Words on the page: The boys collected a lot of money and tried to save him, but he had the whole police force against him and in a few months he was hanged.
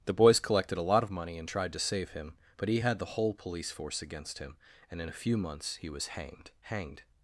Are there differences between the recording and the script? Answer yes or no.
yes